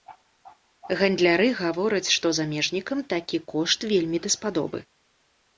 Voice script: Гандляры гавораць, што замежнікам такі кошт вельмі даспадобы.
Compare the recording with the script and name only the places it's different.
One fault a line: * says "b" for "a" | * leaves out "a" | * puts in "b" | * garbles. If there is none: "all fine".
all fine